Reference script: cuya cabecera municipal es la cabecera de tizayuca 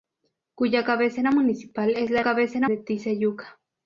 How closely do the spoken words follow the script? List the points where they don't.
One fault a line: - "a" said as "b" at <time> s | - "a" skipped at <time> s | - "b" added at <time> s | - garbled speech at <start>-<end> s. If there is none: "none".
none